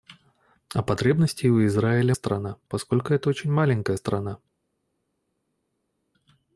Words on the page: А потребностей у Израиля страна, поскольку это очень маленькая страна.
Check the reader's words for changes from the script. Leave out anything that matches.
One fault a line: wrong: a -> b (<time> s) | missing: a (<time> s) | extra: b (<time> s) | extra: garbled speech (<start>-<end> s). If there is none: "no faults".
no faults